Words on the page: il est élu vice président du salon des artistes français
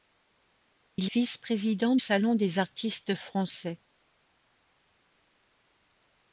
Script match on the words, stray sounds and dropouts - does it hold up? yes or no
no